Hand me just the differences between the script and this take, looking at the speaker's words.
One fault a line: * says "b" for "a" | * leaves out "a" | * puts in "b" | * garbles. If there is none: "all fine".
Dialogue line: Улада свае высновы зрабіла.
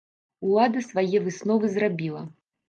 all fine